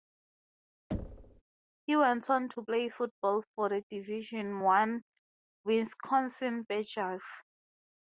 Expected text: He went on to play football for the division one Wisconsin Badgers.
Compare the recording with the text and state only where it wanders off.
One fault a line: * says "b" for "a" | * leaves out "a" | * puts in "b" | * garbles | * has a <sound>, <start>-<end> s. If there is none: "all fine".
* has a thud, 0.9-1.4 s